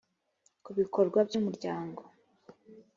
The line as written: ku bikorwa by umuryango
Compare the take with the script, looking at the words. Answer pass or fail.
pass